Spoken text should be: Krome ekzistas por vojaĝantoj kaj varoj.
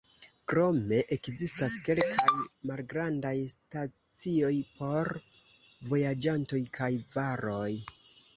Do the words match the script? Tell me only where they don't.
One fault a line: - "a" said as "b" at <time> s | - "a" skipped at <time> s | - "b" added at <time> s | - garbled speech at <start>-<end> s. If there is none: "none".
- "kelkaj malgrandaj stacioj" added at 1.9 s